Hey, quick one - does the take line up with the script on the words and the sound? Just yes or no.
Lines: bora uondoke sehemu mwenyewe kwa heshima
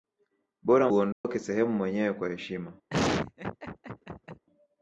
no